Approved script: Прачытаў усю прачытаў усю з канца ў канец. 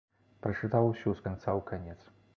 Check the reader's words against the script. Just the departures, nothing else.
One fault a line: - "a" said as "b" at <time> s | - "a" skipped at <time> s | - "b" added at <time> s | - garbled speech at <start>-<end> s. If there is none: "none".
- "прачытаў усю" skipped at 1.1 s